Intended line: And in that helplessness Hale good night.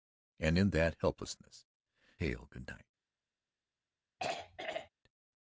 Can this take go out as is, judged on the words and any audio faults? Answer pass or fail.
fail